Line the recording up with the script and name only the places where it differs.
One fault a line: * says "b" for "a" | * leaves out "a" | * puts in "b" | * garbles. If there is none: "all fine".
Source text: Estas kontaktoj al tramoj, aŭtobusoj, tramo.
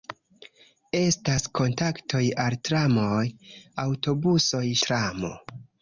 all fine